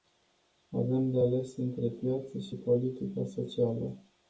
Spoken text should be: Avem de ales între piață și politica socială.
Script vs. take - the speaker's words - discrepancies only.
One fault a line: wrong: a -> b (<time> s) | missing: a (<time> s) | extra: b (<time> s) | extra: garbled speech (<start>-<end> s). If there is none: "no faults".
no faults